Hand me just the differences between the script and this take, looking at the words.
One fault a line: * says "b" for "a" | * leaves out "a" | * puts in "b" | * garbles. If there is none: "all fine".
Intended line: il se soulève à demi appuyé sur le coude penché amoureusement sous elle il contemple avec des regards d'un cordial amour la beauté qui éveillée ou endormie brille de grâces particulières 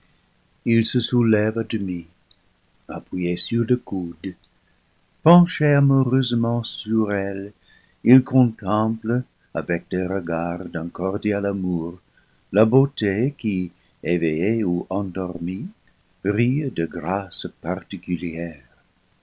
* says "sur" for "sous"